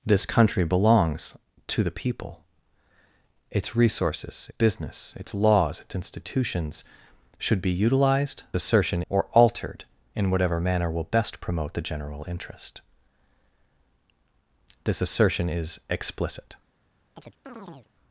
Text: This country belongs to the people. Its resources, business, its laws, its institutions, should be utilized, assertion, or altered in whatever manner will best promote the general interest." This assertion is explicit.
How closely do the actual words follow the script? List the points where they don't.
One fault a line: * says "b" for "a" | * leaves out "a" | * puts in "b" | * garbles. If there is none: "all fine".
all fine